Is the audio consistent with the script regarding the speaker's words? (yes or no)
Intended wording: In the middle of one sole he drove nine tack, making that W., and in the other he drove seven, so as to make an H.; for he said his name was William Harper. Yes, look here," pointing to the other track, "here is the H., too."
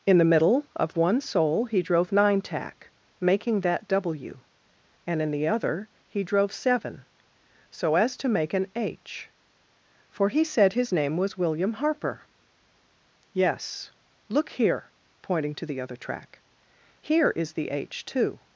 yes